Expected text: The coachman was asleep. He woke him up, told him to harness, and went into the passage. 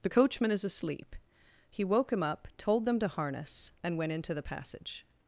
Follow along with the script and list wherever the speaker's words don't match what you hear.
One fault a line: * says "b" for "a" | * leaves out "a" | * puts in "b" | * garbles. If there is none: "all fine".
* says "is" for "was"
* says "them" for "him"